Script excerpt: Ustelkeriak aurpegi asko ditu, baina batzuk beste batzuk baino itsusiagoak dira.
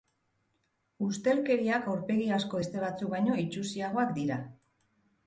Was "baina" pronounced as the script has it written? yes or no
no